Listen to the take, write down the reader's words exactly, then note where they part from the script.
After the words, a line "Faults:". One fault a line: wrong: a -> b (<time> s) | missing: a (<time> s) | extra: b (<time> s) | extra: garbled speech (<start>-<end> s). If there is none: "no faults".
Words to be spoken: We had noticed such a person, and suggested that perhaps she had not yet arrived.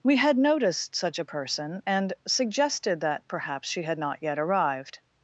We had noticed such a person, and suggested that perhaps she had not yet arrived.
Faults:
no faults